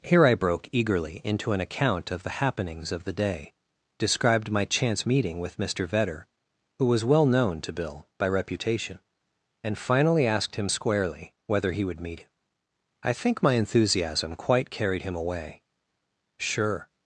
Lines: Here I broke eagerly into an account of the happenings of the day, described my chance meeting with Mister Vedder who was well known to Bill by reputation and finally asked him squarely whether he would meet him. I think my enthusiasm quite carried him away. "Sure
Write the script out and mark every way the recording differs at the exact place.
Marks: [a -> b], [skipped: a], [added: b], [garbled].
Here I broke eagerly into an account of the happenings of the day, described my chance meeting with Mister Vedder who was well known to Bill by reputation and finally asked him squarely whether he would meet him. I think my enthusiasm quite carried him away. "Sure